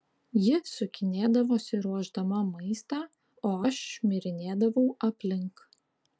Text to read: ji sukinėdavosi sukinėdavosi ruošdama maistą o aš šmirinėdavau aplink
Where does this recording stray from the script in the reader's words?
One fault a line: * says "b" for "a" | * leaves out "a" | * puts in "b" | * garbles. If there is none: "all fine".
* leaves out "sukinėdavosi"